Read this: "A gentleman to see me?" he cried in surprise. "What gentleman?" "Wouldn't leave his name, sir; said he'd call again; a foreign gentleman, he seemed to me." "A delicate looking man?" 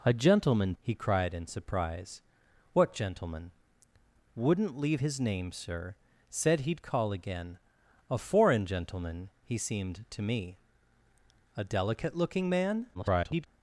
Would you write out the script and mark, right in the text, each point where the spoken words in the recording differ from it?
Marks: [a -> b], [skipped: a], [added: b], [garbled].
"A gentleman [skipped: to see me?"] he cried in surprise. "What gentleman?" "Wouldn't leave his name, sir; said he'd call again; a foreign gentleman, he seemed to me." "A delicate looking man?" [garbled]